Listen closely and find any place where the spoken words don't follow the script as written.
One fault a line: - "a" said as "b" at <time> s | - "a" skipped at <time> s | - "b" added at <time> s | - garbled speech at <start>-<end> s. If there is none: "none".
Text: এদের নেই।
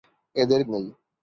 none